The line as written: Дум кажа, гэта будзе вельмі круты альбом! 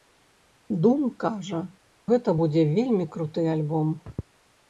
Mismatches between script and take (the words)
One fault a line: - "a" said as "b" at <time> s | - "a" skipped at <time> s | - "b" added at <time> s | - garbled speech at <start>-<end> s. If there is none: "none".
none